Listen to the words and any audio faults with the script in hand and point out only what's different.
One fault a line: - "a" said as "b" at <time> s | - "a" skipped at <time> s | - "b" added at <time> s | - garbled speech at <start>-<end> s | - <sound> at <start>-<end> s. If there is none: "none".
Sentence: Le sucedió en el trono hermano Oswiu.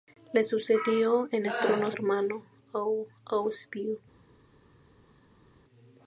none